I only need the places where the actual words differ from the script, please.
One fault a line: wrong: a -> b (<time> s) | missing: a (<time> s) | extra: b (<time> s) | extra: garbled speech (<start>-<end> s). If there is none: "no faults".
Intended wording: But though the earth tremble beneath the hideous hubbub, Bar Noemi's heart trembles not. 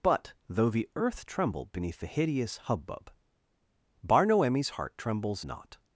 no faults